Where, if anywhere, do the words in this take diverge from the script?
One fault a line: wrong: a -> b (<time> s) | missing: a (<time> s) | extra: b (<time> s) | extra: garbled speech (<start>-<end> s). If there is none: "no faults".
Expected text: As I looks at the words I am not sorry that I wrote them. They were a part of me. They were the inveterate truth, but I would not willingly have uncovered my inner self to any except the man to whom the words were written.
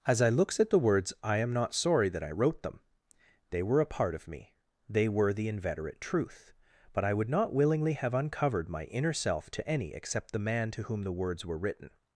no faults